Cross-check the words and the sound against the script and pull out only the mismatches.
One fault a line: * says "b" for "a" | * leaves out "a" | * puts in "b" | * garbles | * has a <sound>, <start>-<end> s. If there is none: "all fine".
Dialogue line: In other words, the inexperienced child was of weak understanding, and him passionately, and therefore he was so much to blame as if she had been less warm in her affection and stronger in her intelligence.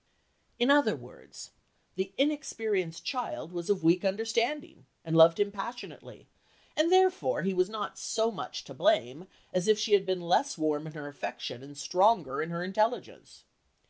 * puts in "loved"
* puts in "not"